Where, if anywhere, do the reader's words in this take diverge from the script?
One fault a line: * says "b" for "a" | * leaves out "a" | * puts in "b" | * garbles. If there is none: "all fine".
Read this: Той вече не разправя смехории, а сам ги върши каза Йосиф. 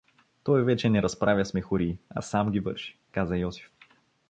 all fine